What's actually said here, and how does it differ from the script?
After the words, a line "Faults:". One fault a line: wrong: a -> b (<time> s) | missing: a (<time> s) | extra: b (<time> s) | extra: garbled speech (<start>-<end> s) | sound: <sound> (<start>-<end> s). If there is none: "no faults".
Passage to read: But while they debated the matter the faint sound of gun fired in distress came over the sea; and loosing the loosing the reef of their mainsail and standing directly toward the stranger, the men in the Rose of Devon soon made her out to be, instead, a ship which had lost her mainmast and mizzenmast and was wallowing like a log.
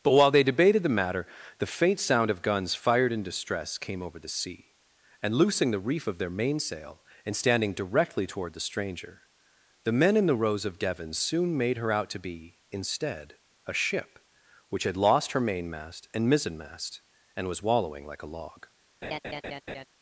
But while they debated the matter the faint sound of guns fired in distress came over the sea; and loosing the reef of their mainsail and standing directly toward the stranger, the men in the Rose of Devon soon made her out to be, instead, a ship which had lost her mainmast and mizzenmast and was wallowing like a log.
Faults:
wrong: gun -> guns (2.4 s)
missing: loosing the (5.8 s)
sound: laugh (19.0-19.8 s)